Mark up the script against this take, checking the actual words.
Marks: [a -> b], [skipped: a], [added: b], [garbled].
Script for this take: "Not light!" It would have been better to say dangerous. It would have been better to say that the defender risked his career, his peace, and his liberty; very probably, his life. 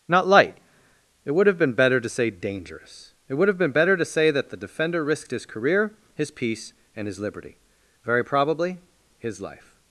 "Not light!" It would have been better to say dangerous. It would have been better to say that the defender risked his career, his peace, and his liberty; very probably, his life.